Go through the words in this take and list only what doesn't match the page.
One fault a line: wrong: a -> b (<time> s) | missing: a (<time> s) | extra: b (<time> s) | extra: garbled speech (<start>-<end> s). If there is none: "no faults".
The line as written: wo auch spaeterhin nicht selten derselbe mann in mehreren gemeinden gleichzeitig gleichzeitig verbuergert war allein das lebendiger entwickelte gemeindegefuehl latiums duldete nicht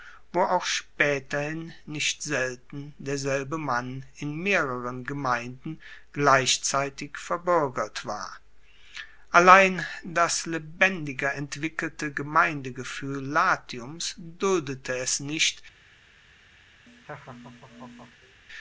missing: gleichzeitig (7.2 s)
extra: es (15.0 s)